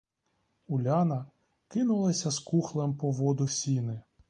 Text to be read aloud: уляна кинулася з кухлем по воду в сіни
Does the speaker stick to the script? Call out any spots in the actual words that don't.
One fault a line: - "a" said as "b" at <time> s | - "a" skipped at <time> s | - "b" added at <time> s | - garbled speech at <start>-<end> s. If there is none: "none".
none